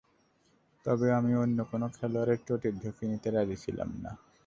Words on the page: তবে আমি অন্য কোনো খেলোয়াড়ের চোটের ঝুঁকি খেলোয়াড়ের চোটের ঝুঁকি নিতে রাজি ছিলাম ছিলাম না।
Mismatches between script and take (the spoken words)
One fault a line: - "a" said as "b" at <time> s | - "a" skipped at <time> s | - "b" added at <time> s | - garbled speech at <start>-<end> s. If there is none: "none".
- "খেলোয়াড়ের চোটের ঝুঁকি" skipped at 3.0 s
- "ছিলাম" skipped at 3.9 s